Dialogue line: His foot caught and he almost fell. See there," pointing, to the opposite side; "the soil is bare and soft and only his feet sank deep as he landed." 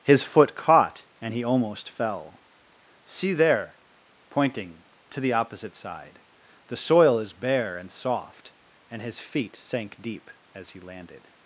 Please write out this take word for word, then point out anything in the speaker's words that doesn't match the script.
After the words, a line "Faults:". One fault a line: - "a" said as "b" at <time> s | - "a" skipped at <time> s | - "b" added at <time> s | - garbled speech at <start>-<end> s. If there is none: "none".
His foot caught and he almost fell. See there," pointing, to the opposite side; "the soil is bare and soft and his feet sank deep as he landed."
Faults:
- "only" skipped at 9.0 s